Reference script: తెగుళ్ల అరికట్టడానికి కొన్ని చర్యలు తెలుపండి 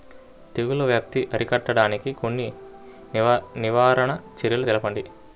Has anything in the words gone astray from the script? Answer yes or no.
yes